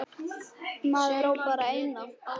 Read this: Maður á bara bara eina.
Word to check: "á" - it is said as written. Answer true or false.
true